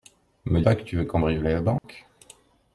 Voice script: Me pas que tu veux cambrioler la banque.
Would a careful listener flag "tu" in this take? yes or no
no